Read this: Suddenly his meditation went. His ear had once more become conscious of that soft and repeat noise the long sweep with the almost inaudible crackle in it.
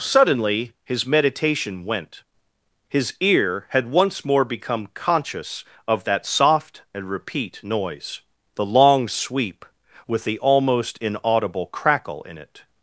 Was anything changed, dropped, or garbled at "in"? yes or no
no